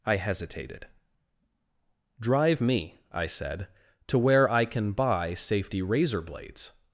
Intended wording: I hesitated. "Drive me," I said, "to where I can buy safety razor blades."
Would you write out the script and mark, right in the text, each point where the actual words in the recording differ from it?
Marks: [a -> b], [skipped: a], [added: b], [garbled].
I hesitated. "Drive me," I said, "to where I can buy safety razor blades."